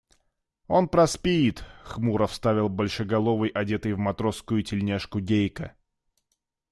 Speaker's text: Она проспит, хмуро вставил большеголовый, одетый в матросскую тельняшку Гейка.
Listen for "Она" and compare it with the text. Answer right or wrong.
wrong